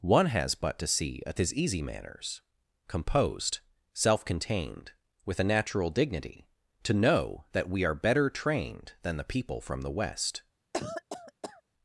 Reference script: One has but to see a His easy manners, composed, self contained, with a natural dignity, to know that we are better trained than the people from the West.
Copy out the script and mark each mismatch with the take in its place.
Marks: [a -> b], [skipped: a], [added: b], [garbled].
One has but to see a His easy manners, composed, self contained, with a natural dignity, to know that we are better trained than the people from the West.